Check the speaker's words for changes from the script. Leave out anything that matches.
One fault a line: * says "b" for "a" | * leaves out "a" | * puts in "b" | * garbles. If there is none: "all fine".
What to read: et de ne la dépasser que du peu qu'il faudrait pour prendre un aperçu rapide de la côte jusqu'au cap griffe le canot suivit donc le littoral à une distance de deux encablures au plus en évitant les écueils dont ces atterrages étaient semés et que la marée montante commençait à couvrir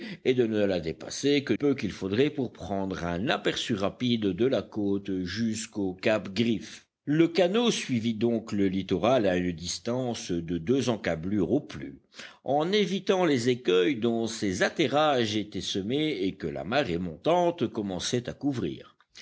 * leaves out "du"